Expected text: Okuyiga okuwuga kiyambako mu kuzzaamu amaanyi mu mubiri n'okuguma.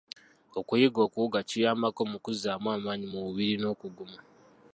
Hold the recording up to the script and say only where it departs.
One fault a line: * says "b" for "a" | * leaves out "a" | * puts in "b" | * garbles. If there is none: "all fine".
all fine